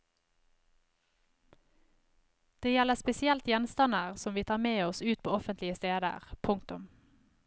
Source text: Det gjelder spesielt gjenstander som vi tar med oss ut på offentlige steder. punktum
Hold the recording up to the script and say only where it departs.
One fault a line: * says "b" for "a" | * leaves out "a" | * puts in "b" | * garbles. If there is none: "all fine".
all fine